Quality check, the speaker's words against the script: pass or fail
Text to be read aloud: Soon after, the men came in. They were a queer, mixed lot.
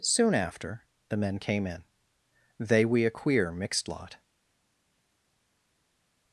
fail